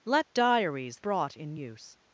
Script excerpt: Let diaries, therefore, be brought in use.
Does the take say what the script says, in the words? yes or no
no